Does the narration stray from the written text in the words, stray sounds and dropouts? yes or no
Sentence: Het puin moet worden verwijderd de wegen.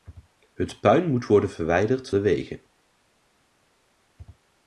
no